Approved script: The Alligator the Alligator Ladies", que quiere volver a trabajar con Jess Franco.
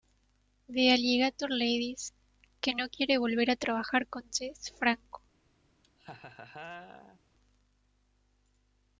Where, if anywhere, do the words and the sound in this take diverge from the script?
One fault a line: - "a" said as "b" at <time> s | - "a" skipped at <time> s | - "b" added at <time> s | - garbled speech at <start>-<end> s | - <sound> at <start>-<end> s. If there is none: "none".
- "the Alligator" skipped at 1.5 s
- "no" added at 2.7 s
- laugh at 5.8-7.2 s